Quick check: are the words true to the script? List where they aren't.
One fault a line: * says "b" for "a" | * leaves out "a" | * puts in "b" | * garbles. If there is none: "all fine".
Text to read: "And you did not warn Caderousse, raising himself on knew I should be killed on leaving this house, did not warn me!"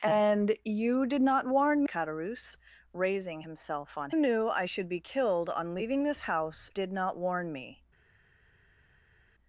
all fine